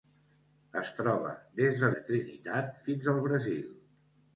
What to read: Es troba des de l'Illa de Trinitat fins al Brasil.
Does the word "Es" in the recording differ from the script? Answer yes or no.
no